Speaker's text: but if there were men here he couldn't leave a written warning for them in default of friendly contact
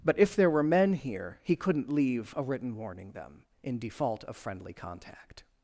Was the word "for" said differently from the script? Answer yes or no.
yes